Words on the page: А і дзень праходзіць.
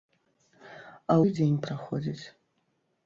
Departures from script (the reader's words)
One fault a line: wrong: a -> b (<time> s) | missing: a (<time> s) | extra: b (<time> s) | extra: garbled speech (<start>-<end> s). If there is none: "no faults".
no faults